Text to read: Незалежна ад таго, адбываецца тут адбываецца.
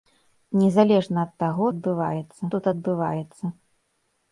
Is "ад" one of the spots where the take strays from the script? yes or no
no